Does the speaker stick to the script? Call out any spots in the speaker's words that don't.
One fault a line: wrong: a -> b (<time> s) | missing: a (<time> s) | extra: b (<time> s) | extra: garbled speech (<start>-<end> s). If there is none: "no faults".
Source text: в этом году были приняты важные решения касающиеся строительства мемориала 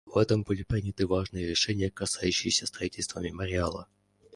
missing: году (0.4 s)